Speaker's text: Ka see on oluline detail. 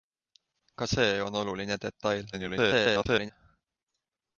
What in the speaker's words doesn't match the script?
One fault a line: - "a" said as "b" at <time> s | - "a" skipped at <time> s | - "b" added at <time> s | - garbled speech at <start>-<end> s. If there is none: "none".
- garbled speech at 2.3-3.3 s